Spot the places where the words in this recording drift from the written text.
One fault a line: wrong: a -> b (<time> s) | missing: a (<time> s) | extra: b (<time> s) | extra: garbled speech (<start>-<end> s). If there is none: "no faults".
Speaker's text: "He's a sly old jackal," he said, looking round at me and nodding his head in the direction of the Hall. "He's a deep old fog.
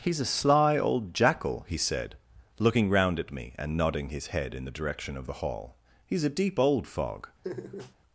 no faults